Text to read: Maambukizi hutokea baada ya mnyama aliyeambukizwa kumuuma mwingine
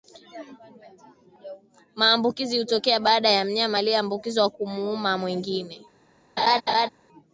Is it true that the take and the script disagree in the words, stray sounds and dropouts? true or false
true